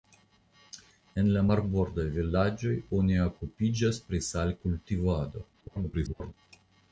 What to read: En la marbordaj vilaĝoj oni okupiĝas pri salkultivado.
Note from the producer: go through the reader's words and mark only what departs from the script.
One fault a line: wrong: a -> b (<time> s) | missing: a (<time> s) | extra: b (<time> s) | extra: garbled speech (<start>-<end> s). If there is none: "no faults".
extra: garbled speech (5.5-6.3 s)